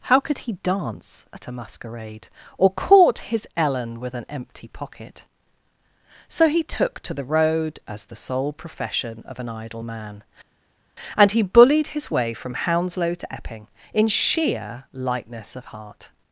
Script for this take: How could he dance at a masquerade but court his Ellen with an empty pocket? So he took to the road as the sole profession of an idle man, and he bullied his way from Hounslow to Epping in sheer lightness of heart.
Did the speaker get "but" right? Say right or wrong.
wrong